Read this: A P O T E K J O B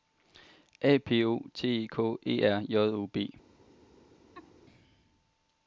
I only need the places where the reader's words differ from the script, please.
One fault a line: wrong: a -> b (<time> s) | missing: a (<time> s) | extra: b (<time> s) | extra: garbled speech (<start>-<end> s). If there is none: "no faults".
extra: E R (2.2 s)